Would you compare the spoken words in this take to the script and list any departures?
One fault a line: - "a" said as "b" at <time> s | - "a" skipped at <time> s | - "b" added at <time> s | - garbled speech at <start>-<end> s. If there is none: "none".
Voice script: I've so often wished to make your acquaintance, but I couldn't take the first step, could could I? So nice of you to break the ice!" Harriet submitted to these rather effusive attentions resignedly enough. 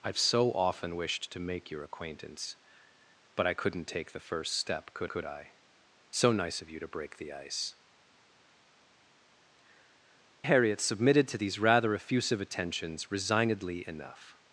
none